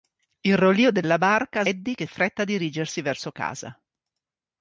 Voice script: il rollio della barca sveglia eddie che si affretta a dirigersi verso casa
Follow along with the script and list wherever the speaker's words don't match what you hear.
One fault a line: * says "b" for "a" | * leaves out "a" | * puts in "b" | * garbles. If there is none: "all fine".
* leaves out "sveglia"
* leaves out "si"